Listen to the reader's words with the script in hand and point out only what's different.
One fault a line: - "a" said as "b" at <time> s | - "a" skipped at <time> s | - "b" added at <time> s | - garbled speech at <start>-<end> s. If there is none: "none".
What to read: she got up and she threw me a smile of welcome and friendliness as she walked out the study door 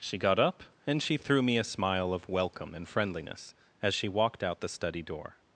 none